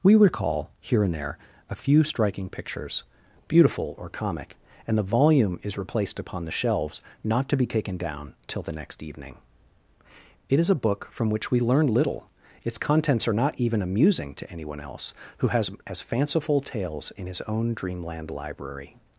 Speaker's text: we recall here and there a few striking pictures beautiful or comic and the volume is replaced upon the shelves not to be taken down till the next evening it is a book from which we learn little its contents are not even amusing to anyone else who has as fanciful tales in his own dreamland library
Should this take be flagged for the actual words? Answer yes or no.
no